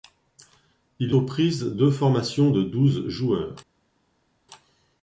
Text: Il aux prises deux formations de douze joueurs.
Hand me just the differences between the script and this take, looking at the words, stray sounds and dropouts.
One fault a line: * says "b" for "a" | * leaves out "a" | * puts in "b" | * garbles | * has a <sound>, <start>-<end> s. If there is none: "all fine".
all fine